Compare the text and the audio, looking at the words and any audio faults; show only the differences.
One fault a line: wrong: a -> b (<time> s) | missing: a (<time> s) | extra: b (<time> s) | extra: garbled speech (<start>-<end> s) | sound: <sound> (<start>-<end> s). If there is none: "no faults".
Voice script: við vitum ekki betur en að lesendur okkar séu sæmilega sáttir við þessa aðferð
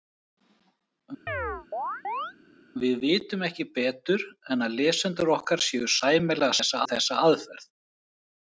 sound: chirp (1.3-2.3 s)
wrong: sáttir -> þessa (6.6 s)